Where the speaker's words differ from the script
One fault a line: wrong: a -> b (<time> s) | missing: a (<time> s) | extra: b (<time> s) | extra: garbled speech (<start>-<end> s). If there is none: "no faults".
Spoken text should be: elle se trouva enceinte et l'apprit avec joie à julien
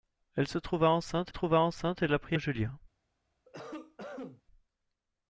extra: trouva enceinte (1.3 s)
missing: avec joie (2.4 s)